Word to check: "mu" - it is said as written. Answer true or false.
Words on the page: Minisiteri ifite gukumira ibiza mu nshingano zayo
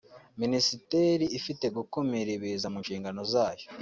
true